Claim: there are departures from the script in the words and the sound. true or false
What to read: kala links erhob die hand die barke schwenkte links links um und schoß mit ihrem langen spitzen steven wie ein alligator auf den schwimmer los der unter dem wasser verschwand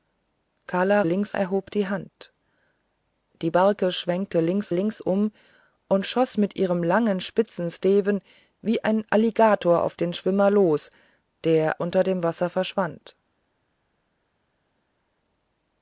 false